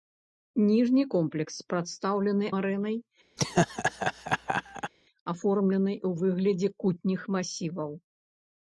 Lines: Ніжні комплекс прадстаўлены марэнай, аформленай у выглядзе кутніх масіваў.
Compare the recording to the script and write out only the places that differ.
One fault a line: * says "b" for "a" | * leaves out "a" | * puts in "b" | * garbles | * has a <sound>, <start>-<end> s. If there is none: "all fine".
* has a laugh, 3.4-4.9 s